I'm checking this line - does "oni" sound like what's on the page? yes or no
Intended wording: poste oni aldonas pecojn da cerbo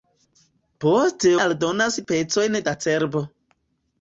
no